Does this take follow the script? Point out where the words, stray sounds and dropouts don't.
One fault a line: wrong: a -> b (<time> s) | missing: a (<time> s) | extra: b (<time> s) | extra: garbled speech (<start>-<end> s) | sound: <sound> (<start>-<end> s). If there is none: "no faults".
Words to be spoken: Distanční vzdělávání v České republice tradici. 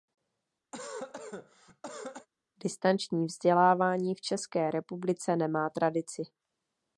sound: cough (0.7-2.3 s)
extra: nemá (5.4 s)